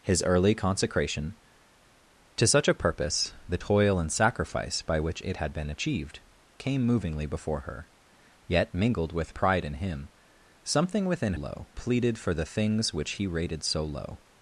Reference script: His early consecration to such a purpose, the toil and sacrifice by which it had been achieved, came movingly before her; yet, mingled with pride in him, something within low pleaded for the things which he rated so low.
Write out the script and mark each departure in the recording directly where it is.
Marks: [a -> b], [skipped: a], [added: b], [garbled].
His early consecration to such a purpose, the toil and sacrifice by which it had been achieved, came movingly before her; yet, mingled with pride in him, something within low pleaded for the things which he rated so low.